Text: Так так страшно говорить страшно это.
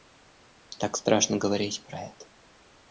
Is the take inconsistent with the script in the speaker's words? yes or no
yes